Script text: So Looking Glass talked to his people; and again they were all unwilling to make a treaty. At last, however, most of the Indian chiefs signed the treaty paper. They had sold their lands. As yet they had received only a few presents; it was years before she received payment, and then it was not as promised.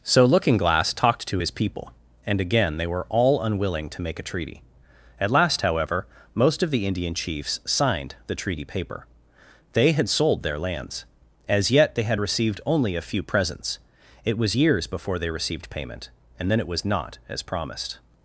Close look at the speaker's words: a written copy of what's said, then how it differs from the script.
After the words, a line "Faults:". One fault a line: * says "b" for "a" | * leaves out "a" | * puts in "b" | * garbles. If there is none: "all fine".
So Looking Glass talked to his people; and again they were all unwilling to make a treaty. At last, however, most of the Indian chiefs signed the treaty paper. They had sold their lands. As yet they had received only a few presents; it was years before they received payment, and then it was not as promised.
Faults:
* says "they" for "she"